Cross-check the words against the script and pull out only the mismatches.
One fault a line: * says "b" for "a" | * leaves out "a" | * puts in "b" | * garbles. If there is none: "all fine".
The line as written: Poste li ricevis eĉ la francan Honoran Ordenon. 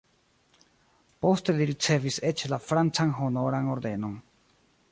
all fine